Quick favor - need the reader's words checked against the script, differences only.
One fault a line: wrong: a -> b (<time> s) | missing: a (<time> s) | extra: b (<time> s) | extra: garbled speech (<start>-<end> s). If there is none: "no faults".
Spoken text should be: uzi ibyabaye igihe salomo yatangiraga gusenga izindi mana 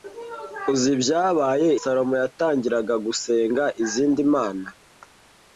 missing: igihe (1.7 s)